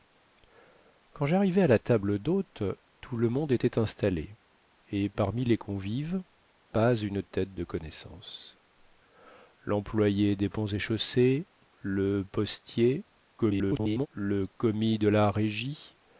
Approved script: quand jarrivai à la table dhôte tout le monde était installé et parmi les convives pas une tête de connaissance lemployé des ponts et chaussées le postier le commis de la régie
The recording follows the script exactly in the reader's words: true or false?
false